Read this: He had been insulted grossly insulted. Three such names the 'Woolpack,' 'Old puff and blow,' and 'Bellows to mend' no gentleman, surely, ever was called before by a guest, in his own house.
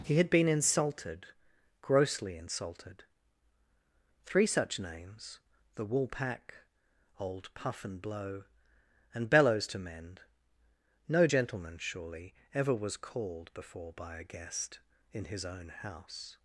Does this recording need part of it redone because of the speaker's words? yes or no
no